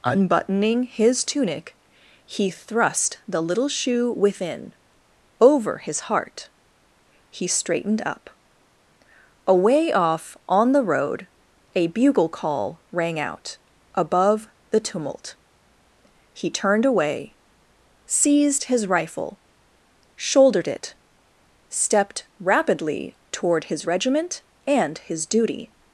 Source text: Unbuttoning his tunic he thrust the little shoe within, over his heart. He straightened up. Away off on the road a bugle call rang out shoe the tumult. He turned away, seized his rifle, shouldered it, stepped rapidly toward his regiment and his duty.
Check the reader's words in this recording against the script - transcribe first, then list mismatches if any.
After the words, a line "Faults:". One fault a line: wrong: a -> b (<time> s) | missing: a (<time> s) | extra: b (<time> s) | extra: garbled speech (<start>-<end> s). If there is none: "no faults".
Unbuttoning his tunic he thrust the little shoe within, over his heart. He straightened up. Away off on the road a bugle call rang out above the tumult. He turned away, seized his rifle, shouldered it, stepped rapidly toward his regiment and his duty.
Faults:
wrong: shoe -> above (13.9 s)